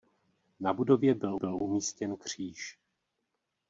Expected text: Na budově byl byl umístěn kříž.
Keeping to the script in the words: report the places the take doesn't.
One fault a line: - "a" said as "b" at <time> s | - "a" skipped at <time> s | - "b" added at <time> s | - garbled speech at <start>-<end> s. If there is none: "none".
none